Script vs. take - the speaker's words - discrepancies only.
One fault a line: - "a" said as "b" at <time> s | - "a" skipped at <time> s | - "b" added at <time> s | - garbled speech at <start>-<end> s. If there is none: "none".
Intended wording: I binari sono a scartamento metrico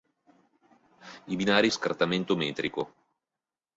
- "sono" skipped at 1.7 s